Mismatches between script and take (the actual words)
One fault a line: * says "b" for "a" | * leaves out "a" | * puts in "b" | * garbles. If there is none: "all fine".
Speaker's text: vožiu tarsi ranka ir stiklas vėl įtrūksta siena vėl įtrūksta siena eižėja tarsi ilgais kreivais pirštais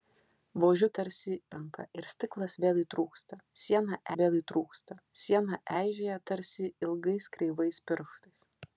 all fine